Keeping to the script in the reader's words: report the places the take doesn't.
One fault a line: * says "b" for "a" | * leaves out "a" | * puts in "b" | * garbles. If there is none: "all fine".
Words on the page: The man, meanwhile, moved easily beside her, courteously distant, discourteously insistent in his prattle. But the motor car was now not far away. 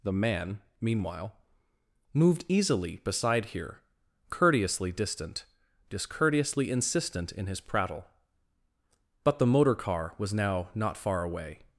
* says "here" for "her"